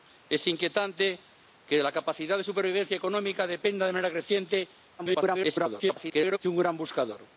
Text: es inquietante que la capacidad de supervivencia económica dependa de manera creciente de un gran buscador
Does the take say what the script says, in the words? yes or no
no